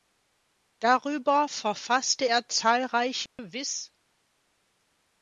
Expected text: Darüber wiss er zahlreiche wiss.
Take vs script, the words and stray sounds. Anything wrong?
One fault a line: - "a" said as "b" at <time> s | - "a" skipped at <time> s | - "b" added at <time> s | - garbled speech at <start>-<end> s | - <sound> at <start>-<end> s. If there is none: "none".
- "wiss" said as "verfasste" at 1.4 s
- dropout at 3.3-3.4 s